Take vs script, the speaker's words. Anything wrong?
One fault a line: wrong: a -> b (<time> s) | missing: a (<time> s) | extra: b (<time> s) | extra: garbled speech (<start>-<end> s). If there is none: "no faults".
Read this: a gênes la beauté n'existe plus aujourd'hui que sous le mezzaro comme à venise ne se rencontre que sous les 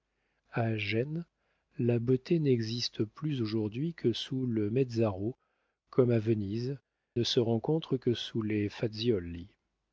no faults